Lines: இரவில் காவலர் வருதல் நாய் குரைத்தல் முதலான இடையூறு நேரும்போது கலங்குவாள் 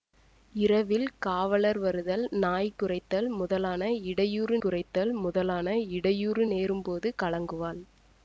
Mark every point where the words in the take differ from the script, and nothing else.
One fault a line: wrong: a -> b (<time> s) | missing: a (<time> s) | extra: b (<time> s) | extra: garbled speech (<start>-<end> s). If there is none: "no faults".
extra: குரைத்தல் முதலான இடையூறு (4.6 s)